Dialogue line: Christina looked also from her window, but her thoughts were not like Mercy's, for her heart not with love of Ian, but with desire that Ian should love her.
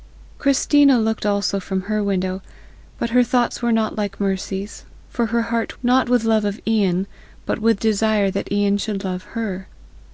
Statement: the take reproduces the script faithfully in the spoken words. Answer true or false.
true